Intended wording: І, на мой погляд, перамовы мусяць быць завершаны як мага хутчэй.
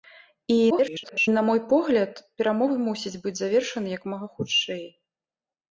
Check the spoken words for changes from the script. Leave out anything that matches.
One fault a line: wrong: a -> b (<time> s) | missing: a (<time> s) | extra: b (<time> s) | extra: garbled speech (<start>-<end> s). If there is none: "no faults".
extra: garbled speech (0.7-1.3 s)